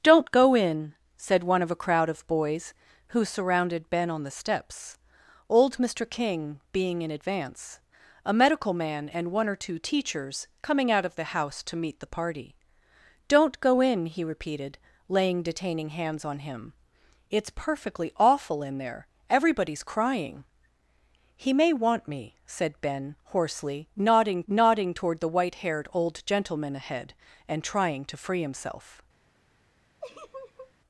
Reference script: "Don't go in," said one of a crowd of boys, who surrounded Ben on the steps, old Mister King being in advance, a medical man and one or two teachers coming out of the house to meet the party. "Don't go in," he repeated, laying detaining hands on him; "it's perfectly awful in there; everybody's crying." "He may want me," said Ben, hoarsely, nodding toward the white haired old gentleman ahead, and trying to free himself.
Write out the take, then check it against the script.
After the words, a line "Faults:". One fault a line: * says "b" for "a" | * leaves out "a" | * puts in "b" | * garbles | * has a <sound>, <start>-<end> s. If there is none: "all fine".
"Don't go in," said one of a crowd of boys, who surrounded Ben on the steps, old Mister King being in advance, a medical man and one or two teachers coming out of the house to meet the party. "Don't go in," he repeated, laying detaining hands on him; "it's perfectly awful in there; everybody's crying." "He may want me," said Ben, hoarsely, nodding nodding toward the white haired old gentleman ahead, and trying to free himself.
Faults:
* puts in "nodding"
* has a laugh, 30.0-30.7 s